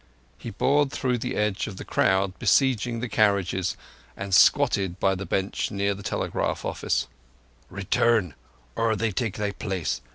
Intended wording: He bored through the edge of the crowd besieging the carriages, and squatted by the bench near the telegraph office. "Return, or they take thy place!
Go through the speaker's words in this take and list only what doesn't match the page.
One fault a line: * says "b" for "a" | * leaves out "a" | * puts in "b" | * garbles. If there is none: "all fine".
all fine